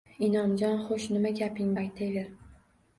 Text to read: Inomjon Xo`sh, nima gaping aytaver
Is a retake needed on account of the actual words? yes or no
no